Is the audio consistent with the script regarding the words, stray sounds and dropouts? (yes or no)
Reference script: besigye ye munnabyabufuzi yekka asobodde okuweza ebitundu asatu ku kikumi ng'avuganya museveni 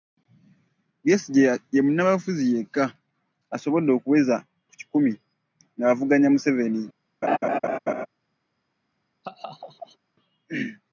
no